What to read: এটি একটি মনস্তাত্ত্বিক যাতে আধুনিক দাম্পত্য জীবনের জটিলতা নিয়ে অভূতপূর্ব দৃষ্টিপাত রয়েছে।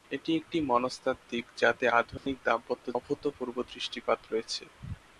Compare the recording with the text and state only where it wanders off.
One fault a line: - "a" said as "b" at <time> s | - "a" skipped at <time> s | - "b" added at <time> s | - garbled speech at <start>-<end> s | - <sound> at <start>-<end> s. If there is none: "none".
- dropout at 2.2-2.3 s
- "জীবনের জটিলতা নিয়ে" skipped at 2.9 s